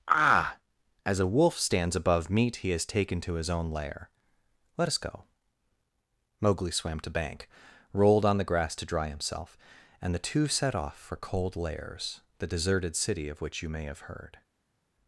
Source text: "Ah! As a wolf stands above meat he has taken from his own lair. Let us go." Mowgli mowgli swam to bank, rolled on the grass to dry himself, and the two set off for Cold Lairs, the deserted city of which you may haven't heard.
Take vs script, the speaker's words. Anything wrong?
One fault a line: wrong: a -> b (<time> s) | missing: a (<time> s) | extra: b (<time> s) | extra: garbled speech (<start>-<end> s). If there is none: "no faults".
wrong: from -> to (3.2 s)
missing: mowgli (6.7 s)
wrong: haven't -> have (13.9 s)